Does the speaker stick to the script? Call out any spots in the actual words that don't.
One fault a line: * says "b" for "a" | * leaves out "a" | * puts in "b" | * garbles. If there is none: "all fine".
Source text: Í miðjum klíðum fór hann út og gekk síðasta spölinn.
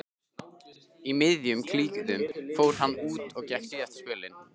all fine